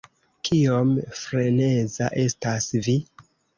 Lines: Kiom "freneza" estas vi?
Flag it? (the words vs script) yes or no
no